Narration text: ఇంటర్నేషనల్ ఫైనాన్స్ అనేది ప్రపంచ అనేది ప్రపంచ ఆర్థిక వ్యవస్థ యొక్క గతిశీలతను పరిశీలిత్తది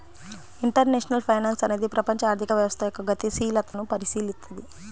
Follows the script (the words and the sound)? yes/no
no